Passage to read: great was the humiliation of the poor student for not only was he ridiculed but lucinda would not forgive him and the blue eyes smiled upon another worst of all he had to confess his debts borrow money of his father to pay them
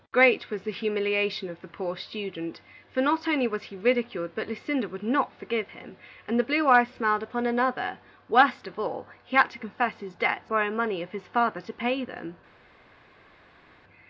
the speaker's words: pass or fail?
pass